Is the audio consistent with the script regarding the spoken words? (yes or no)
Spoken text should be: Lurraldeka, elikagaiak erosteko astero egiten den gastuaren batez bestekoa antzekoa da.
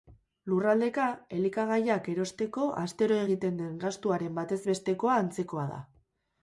yes